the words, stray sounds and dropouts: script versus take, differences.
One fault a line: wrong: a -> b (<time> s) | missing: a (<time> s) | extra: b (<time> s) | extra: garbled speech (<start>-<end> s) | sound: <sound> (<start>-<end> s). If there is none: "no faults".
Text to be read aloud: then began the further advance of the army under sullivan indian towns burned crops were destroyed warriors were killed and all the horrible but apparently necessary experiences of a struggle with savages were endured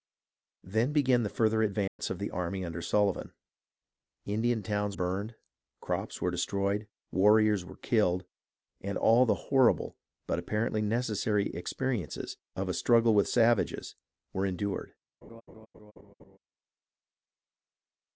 sound: dropout (1.9-2.0 s)
sound: laugh (15.2-16.4 s)